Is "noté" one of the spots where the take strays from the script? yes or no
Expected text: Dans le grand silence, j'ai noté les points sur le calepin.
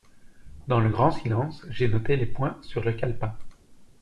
no